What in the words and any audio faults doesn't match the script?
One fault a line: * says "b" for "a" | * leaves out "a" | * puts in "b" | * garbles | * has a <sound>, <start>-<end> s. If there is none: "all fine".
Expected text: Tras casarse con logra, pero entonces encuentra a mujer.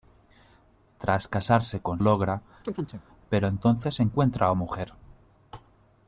* has a chirp, 2.6-3.0 s